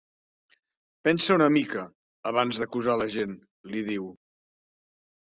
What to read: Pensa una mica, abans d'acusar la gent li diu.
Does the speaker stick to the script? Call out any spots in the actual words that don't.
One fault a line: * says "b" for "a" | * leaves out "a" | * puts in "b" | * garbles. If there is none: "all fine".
all fine